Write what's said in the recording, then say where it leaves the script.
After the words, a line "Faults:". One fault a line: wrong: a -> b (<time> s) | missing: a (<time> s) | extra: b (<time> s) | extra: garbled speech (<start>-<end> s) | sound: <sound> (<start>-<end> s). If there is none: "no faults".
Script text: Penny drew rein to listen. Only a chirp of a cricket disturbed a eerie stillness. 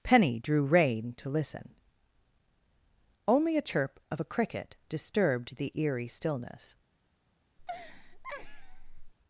Penny drew rein to listen. Only a chirp of a cricket disturbed the eerie stillness.
Faults:
wrong: a -> the (5.6 s)
sound: laugh (7.6-9.1 s)